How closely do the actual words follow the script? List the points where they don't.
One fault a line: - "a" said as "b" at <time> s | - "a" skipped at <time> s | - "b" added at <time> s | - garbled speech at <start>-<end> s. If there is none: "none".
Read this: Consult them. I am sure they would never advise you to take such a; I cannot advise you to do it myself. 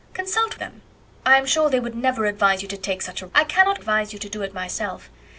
none